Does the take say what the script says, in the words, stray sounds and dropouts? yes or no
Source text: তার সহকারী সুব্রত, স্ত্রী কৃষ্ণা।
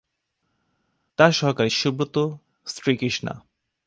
yes